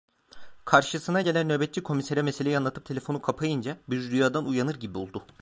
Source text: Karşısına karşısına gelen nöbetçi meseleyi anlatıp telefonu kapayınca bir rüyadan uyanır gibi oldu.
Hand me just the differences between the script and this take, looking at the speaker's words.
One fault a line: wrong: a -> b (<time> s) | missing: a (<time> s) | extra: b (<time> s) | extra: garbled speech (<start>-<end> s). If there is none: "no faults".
missing: karşısına (1.2 s)
extra: komisere (1.8 s)